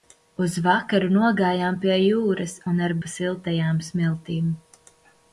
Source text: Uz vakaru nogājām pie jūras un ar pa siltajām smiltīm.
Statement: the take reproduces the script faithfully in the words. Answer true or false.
true